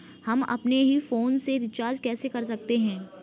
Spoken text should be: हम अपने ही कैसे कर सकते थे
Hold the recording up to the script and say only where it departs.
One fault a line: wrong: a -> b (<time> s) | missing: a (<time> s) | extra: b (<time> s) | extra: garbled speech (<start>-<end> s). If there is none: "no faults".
extra: फोन से रिचार्ज (1.0 s)
wrong: थे -> हैं (2.8 s)